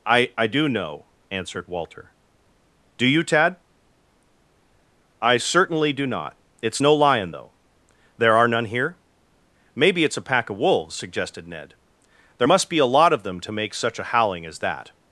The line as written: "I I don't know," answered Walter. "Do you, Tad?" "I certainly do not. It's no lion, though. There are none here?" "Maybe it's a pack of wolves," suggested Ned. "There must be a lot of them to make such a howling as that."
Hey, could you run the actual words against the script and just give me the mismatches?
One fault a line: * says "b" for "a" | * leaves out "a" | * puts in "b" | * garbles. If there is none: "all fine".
* says "do" for "don't"